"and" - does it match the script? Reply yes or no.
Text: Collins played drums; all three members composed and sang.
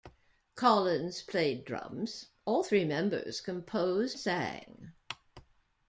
no